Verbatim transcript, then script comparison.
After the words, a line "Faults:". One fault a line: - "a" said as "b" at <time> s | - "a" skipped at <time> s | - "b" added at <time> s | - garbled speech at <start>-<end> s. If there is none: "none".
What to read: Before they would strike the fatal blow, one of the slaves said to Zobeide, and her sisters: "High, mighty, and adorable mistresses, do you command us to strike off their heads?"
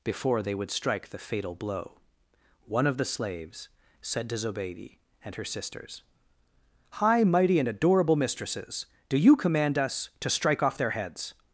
Before they would strike the fatal blow, one of the slaves said to Zobeide, and her sisters: "High, mighty, and adorable mistresses, do you command us to strike off their heads?"
Faults:
none